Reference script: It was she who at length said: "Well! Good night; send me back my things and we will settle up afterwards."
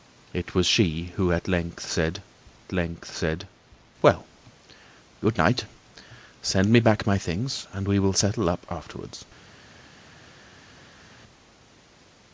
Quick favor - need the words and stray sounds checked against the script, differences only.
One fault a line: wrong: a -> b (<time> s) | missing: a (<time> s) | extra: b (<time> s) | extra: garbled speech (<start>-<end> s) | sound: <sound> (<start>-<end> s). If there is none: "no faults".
extra: length said (2.7 s)